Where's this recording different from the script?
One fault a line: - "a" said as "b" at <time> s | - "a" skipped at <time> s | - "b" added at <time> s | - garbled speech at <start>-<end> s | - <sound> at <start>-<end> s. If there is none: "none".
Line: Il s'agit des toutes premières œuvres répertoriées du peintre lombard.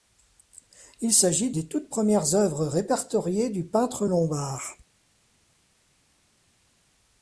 none